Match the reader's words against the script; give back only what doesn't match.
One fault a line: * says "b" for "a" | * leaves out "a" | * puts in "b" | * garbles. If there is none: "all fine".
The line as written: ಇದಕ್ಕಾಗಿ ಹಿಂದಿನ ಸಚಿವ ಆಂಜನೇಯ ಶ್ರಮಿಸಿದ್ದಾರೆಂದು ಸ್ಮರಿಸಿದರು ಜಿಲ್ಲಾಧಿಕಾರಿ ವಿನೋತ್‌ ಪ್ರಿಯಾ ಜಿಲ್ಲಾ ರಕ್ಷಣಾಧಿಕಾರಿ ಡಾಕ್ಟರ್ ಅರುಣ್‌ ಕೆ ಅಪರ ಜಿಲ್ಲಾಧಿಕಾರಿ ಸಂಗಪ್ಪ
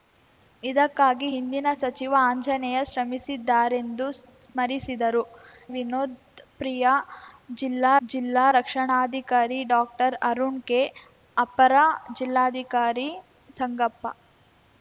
* leaves out "ಜಿಲ್ಲಾಧಿಕಾರಿ"
* puts in "ಜಿಲ್ಲಾ"